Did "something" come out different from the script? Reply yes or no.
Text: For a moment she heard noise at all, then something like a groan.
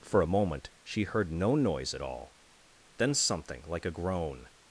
no